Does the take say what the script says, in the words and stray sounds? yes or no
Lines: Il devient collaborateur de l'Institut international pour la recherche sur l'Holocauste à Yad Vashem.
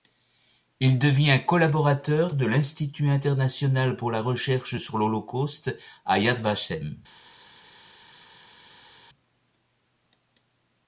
yes